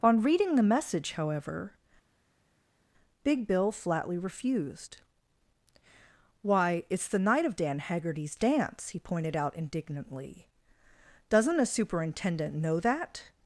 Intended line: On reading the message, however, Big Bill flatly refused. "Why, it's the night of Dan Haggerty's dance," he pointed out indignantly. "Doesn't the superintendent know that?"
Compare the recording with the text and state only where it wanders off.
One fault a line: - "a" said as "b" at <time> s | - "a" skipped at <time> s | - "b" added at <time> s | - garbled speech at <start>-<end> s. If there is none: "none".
- "the" said as "a" at 11.6 s